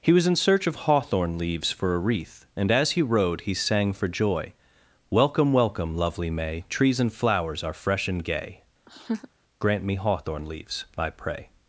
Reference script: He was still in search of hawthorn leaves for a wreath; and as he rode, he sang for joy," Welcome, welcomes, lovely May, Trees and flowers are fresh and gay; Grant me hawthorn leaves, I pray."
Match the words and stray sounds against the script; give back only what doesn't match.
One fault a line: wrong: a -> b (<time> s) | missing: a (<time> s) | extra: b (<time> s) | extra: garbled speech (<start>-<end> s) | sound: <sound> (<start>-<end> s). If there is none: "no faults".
missing: still (0.2 s)
wrong: welcomes -> welcome (5.5 s)
sound: laugh (8.9-9.3 s)